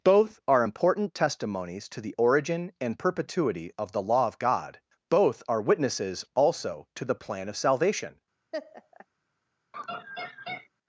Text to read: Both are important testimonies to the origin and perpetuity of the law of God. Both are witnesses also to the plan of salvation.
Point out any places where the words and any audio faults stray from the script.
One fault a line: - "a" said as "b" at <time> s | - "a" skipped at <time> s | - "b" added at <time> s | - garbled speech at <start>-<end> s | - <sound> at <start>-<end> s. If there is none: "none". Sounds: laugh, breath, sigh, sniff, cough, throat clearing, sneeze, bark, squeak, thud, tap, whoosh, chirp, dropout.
- laugh at 8.5-9.1 s
- laugh at 9.7-10.7 s